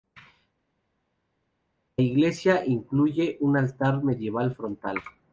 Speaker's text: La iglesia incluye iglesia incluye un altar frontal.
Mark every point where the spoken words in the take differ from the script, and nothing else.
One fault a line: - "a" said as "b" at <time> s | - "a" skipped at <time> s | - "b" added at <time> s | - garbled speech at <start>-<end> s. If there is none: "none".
- "iglesia incluye" skipped at 3.4 s
- "medieval" added at 4.0 s